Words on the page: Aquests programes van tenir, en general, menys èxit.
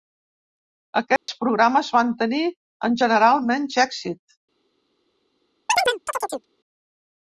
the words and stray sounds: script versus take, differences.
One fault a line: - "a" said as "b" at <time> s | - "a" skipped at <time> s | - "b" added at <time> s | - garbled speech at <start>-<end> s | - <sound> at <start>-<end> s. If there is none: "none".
- dropout at 1.2-1.3 s
- chirp at 5.7-6.5 s